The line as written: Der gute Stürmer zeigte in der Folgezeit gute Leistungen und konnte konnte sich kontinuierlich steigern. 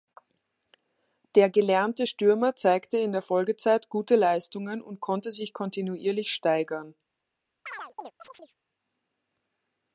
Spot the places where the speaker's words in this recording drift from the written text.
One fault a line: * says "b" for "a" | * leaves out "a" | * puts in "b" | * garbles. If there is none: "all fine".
* says "gelernte" for "gute"
* leaves out "konnte"